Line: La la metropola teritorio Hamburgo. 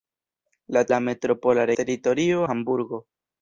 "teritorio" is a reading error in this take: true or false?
false